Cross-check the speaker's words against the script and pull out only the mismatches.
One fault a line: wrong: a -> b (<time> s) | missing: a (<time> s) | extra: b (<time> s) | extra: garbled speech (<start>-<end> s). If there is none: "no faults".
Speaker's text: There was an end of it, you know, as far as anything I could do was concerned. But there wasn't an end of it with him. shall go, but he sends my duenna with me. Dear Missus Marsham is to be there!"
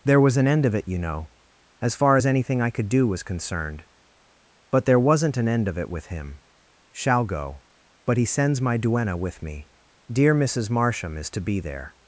no faults